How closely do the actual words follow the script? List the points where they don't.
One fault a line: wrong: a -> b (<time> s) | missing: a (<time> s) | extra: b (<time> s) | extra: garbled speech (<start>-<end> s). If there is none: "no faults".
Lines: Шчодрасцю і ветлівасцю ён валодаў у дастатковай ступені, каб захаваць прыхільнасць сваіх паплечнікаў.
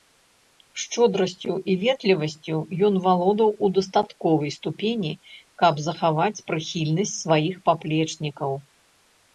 no faults